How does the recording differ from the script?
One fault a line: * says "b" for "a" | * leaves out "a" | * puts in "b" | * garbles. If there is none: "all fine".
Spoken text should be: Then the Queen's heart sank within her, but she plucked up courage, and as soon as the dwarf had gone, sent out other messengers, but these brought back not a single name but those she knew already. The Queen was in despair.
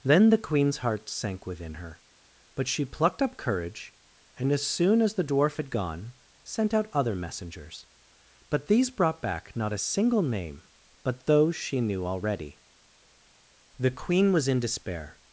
all fine